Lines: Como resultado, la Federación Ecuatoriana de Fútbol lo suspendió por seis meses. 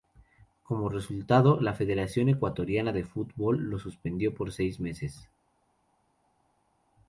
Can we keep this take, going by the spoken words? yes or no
yes